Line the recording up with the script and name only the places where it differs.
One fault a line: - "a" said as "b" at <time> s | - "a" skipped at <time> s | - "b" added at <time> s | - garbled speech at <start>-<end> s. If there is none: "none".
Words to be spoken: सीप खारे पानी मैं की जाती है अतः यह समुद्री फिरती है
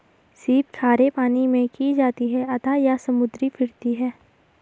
none